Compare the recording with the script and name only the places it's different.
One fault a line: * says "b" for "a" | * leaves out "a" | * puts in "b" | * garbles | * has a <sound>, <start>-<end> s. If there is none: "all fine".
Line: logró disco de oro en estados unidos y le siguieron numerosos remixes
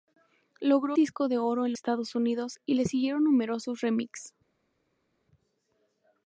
all fine